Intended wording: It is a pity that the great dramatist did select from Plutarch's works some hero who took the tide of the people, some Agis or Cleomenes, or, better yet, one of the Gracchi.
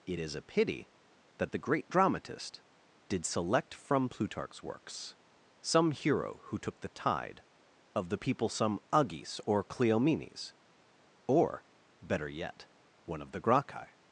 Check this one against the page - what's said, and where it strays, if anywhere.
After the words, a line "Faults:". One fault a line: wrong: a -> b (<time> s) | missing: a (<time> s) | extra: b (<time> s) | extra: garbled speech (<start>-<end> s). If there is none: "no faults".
It is a pity that the great dramatist did select from Plutarch's works some hero who took the tide of the people, some Agis or Cleomenes, or, better yet, one of the Gracchi.
Faults:
no faults